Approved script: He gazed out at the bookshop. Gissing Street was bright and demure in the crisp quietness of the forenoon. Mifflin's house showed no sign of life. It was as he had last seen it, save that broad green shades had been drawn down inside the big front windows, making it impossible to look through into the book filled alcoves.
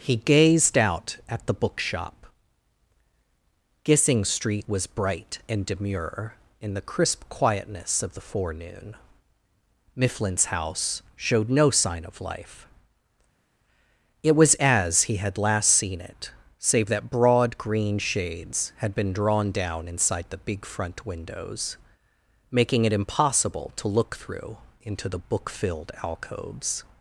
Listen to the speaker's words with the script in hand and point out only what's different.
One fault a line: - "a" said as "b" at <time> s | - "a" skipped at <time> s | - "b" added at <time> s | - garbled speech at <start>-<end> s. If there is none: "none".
none